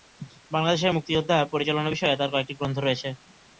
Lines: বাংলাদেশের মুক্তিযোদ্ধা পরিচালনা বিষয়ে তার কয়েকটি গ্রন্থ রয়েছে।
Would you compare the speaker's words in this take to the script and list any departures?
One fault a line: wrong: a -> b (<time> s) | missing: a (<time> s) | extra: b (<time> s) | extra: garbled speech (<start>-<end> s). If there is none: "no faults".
no faults